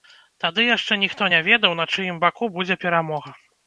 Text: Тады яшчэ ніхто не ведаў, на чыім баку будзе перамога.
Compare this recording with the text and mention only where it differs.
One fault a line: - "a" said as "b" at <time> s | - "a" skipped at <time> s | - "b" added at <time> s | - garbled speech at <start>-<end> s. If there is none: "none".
none